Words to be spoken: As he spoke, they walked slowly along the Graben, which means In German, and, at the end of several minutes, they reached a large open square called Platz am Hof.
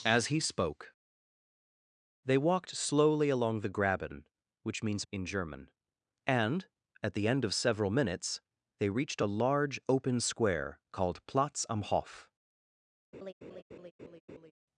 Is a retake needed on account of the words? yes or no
no